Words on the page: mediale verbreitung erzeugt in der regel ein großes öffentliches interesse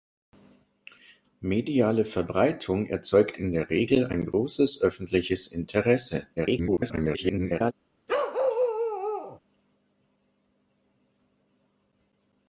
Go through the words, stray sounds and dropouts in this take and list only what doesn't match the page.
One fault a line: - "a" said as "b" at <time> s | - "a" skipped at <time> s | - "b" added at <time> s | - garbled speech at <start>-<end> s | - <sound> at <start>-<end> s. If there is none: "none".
- garbled speech at 6.4-7.7 s
- bark at 8.1-9.4 s